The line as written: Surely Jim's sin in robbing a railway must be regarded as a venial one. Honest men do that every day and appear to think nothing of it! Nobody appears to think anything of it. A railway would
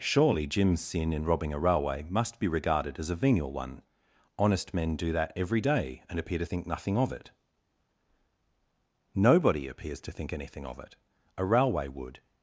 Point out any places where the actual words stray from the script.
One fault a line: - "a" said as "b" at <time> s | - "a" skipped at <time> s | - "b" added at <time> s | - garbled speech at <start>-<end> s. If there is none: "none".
none